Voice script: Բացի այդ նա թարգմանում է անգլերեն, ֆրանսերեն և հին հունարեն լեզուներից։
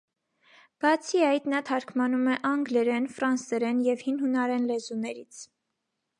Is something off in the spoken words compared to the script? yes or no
no